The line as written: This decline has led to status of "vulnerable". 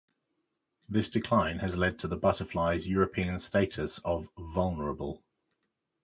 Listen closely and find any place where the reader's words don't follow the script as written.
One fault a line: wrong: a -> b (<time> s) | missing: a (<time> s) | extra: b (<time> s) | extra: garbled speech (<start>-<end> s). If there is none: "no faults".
extra: the butterfly's European (2.1 s)